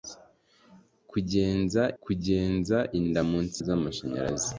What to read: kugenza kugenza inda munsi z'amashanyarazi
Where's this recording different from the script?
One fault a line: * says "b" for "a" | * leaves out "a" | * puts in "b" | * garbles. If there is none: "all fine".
all fine